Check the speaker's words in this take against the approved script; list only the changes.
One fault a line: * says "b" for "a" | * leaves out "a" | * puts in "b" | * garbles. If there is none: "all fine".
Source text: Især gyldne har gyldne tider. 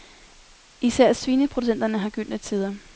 * says "svineproducenterne" for "gyldne"